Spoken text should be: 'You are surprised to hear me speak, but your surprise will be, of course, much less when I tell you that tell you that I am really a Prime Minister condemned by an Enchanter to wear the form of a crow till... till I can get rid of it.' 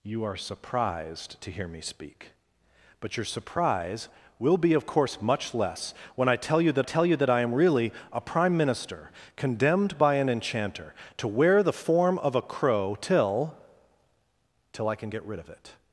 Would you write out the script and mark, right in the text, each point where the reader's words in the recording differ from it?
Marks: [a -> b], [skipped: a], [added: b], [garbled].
'You are surprised to hear me speak, but your surprise will be, of course, much less when I tell you that tell you that I am really a Prime Minister condemned by an Enchanter to wear the form of a crow till... till I can get rid of it.'